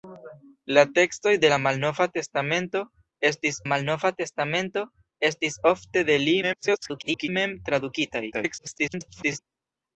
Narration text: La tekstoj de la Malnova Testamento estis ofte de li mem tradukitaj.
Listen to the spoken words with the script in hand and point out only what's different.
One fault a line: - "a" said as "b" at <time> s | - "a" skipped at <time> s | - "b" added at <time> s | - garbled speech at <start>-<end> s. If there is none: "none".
- "Malnova Testamento estis" added at 3.7 s
- garbled speech at 6.4-7.3 s
- garbled speech at 8.3-9.4 s